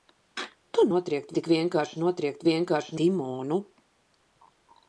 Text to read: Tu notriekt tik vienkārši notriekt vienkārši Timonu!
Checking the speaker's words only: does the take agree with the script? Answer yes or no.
yes